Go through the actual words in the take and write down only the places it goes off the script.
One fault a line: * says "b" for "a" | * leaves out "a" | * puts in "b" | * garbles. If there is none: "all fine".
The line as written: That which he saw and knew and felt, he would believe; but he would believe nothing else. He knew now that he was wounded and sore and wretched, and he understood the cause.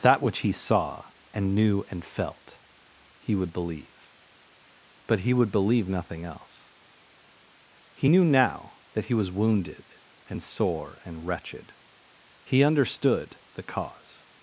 * leaves out "and"